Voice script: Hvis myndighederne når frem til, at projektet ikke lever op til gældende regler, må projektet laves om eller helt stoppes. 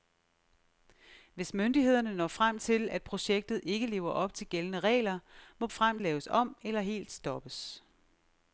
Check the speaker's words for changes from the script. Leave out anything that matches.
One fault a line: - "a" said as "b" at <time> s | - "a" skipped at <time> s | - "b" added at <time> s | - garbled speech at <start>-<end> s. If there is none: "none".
- "projektet" said as "frem" at 5.7 s